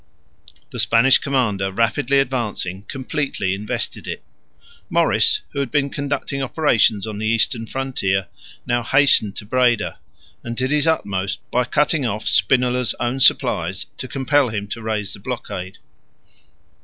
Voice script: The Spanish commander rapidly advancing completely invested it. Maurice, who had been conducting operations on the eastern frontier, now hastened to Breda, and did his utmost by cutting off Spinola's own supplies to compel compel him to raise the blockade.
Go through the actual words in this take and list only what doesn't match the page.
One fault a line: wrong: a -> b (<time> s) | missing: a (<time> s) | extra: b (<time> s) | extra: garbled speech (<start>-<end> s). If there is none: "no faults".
missing: compel (14.5 s)